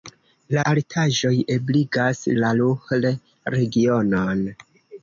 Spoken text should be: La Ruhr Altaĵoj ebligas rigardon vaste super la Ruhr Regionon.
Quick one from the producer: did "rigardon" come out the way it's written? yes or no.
no